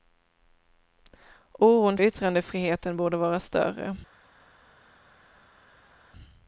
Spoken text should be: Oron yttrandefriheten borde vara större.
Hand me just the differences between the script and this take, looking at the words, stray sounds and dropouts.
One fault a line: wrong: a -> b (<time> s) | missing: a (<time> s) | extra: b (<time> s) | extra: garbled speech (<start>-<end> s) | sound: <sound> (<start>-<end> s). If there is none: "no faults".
no faults